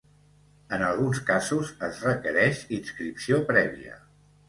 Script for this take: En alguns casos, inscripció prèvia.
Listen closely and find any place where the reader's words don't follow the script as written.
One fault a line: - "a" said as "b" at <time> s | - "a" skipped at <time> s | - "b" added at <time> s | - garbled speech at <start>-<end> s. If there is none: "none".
- "es requereix" added at 1.9 s